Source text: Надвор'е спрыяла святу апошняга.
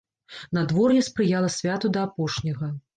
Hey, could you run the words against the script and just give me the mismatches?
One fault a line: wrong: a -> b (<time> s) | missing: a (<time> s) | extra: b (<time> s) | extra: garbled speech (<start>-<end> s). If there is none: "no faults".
extra: да (1.9 s)